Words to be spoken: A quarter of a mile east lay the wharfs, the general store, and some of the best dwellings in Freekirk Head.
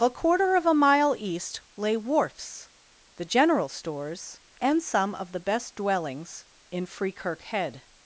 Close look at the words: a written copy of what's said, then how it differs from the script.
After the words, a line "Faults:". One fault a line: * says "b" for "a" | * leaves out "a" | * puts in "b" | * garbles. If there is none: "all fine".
A quarter of a mile east lay wharfs, the general stores, and some of the best dwellings in Freekirk Head.
Faults:
* leaves out "the"
* says "stores" for "store"